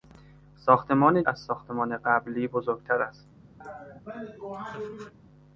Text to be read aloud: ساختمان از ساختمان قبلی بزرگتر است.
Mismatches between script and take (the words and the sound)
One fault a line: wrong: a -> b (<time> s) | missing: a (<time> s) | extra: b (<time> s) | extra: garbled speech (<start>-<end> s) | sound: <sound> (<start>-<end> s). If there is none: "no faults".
sound: laugh (3.6-5.1 s)